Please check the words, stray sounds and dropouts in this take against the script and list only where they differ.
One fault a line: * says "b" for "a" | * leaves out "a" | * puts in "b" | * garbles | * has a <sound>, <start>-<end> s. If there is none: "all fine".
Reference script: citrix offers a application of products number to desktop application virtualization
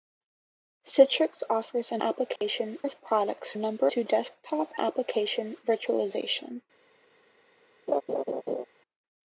* has a dropout, 2.4-2.4 s
* has a laugh, 7.9-8.7 s